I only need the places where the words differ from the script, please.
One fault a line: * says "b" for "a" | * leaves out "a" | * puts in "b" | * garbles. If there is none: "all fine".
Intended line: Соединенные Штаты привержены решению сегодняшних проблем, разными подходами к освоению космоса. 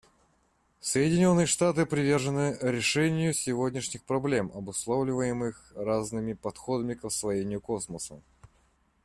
* puts in "обусловливаемых"